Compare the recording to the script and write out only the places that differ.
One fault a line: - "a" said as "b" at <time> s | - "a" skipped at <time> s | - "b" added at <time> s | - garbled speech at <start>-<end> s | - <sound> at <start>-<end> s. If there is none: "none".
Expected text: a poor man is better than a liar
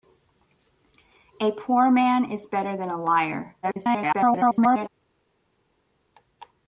- garbled speech at 3.6-4.9 s